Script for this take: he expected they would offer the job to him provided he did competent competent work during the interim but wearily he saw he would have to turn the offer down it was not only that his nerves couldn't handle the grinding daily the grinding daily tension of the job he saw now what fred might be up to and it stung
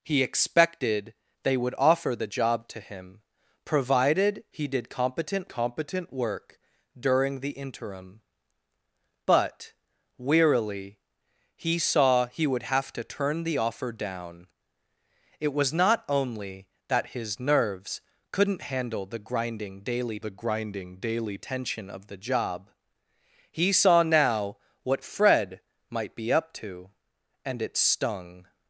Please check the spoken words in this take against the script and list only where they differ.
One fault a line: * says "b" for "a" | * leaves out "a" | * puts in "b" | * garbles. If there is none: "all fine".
all fine